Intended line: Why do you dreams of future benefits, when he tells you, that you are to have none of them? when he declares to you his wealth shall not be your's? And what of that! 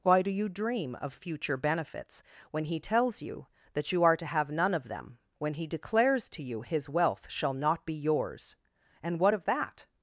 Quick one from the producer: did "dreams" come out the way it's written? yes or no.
no